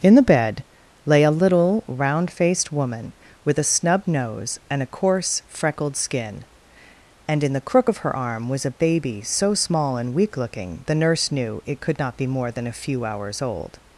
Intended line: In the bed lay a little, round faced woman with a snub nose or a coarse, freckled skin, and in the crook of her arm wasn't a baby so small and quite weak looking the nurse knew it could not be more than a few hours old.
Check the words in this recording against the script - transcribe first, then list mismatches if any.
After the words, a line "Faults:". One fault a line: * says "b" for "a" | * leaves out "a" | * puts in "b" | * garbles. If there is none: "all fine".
In the bed lay a little, round faced woman with a snub nose and a coarse, freckled skin, and in the crook of her arm was a baby so small and weak looking the nurse knew it could not be more than a few hours old.
Faults:
* says "and" for "or"
* says "was" for "wasn't"
* leaves out "quite"